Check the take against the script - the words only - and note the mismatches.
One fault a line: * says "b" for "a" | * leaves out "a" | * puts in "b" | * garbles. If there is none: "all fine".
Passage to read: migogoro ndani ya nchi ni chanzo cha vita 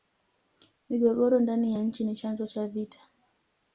all fine